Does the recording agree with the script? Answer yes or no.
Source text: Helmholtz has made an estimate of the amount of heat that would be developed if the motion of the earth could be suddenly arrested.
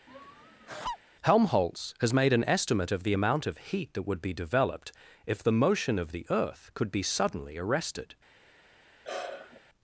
yes